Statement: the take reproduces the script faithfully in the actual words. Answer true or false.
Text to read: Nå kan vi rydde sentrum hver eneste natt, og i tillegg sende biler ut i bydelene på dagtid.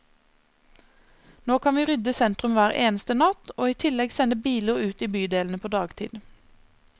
true